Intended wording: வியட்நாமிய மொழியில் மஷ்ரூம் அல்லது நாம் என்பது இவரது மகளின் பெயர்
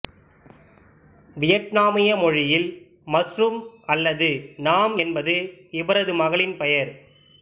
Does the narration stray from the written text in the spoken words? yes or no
no